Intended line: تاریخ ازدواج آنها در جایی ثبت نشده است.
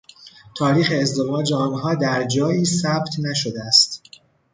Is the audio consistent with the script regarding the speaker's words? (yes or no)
yes